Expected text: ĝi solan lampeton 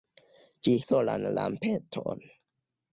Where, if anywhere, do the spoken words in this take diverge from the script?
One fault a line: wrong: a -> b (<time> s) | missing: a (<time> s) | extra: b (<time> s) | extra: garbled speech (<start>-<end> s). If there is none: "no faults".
no faults